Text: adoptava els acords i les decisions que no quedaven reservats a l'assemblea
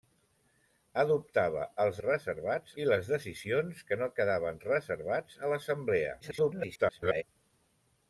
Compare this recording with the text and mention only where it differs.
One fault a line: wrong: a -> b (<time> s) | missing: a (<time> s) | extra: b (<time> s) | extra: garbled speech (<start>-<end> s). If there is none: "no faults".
wrong: acords -> reservats (2.0 s)
extra: garbled speech (6.2-7.2 s)